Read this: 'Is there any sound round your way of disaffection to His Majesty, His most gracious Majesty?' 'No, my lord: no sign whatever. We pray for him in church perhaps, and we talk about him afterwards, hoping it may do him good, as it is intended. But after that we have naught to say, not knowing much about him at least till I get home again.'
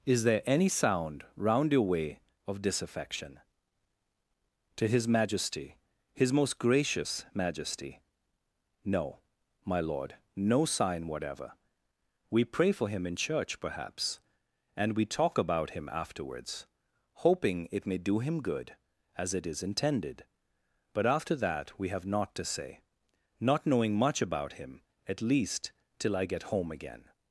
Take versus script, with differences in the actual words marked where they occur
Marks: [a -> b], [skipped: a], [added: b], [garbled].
'Is there any sound round your way of disaffection to His Majesty, His most gracious Majesty?' 'No, my lord: no sign whatever. We pray for him in church perhaps, and we talk about him afterwards, hoping it may do him good, as it is intended. But after that we have naught to say, not knowing much about him at least till I get home again.'